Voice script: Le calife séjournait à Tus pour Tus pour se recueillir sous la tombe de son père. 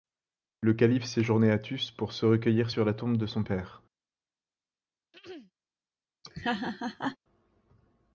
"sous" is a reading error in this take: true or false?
true